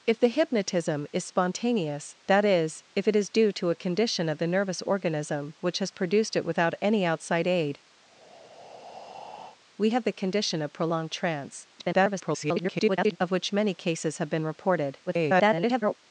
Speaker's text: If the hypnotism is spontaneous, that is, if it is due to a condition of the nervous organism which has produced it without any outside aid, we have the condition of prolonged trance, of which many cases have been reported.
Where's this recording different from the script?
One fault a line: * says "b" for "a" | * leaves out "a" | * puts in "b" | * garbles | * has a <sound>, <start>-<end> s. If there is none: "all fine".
* has a breath, 8.0-9.6 s
* garbles
* garbles